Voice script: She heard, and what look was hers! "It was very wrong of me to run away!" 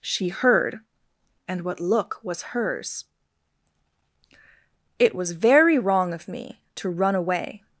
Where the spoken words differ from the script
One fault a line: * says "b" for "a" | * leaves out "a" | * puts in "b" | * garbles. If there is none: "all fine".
all fine